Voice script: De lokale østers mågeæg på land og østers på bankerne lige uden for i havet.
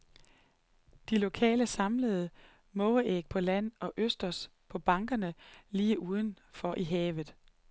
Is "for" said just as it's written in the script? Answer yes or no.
yes